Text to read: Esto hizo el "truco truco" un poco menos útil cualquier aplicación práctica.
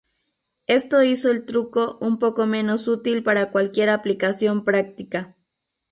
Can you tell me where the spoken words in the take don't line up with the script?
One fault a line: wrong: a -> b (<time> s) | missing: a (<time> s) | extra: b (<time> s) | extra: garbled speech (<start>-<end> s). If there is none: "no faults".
missing: truco (2.0 s)
extra: para (3.2 s)